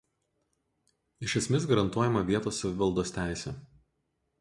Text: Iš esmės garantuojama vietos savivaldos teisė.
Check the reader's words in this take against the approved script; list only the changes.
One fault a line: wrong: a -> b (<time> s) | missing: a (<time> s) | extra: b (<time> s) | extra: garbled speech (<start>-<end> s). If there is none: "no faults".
no faults